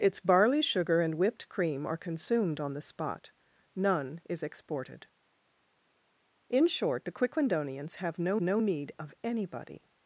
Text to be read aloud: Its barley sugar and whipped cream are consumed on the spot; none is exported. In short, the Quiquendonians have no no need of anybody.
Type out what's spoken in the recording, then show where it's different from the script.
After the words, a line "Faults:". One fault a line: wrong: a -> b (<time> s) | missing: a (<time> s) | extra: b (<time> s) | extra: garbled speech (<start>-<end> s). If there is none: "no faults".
Its barley sugar and whipped cream are consumed on the spot; none is exported. In short, the Quiquendonians have no no need of anybody.
Faults:
no faults